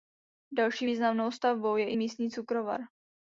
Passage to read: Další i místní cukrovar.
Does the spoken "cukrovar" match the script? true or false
true